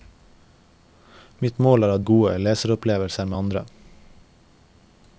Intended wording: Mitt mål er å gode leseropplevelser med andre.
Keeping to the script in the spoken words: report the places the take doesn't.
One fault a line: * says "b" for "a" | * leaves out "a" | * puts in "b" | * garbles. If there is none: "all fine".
all fine